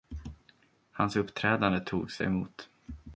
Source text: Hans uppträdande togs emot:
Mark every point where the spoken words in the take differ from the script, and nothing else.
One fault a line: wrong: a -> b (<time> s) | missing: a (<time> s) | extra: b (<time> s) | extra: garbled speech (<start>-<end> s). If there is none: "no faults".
no faults